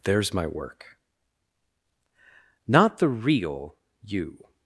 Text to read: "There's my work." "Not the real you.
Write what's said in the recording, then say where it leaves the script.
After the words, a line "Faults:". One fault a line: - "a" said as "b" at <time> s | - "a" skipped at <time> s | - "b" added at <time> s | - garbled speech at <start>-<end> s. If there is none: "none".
"There's my work." "Not the real you.
Faults:
none